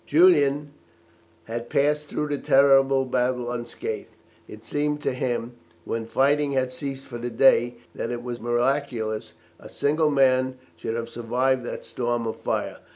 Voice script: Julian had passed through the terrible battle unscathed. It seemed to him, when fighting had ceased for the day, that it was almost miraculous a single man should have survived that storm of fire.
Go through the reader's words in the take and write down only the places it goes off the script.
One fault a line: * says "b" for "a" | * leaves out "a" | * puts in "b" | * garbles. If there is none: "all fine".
* leaves out "almost"